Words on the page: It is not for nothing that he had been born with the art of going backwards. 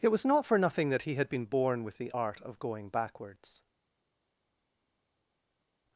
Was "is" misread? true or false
true